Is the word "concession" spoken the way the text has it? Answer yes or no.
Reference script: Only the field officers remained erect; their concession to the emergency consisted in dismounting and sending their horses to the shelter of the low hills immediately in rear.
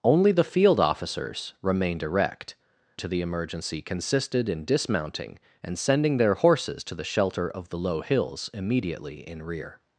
no